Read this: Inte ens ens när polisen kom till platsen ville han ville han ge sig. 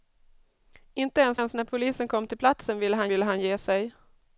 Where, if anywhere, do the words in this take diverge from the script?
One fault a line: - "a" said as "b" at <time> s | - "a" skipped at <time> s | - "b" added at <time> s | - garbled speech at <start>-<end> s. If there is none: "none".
none